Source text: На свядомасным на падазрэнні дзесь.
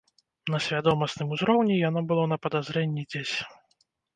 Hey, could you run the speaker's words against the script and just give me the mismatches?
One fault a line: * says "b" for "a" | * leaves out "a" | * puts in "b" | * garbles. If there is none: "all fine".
* puts in "узроўні яно было"